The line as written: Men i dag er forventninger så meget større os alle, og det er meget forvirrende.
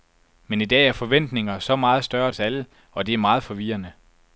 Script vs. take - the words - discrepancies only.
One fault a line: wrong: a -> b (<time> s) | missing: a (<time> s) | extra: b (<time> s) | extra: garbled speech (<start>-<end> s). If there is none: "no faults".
no faults